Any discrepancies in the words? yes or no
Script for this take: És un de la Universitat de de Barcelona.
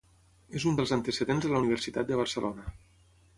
yes